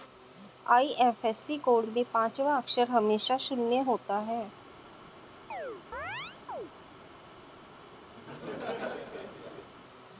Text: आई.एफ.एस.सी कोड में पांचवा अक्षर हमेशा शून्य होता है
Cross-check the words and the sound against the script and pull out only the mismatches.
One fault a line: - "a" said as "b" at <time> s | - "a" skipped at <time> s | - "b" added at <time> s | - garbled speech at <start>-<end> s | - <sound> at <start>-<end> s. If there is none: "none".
- chirp at 5.5-6.7 s
- laugh at 8.2-9.7 s